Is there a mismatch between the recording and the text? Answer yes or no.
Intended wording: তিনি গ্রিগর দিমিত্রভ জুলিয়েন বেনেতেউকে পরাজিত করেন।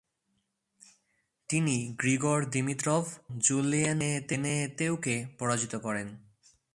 no